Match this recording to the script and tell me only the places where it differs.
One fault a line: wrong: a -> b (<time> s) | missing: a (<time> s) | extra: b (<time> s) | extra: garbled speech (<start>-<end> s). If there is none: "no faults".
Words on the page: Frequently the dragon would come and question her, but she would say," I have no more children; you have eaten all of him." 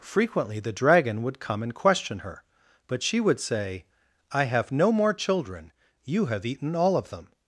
wrong: him -> them (7.1 s)